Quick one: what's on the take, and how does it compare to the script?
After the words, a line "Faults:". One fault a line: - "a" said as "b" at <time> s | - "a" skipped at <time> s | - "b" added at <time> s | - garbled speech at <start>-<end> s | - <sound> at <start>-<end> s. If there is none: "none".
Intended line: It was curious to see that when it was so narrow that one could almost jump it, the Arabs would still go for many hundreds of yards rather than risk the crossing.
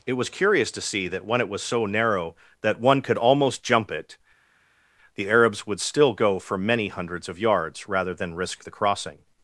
It was curious to see that when it was so narrow that one could almost jump it, the Arabs would still go for many hundreds of yards rather than risk the crossing.
Faults:
none